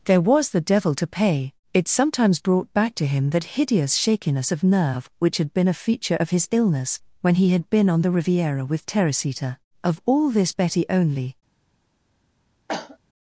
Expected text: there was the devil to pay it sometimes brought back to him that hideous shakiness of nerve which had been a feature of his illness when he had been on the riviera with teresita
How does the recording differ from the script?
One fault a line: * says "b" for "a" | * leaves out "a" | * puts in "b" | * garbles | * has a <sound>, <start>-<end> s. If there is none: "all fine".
* puts in "of all this betty only"
* has a cough, 12.7-13.0 s